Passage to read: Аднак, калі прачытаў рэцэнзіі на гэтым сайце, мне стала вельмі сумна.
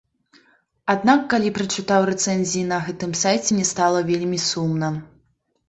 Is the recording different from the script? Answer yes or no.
no